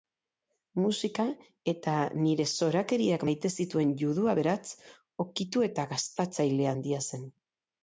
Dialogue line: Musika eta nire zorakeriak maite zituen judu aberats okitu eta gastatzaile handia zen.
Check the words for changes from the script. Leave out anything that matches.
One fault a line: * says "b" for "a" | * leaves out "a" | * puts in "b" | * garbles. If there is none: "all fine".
all fine